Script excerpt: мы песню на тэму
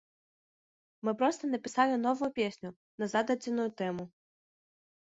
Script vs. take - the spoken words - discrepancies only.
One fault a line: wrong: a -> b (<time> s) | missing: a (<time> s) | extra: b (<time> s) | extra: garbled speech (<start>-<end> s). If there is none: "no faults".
extra: проста напісалі новую (1.2 s)
extra: зададзеную (3.2 s)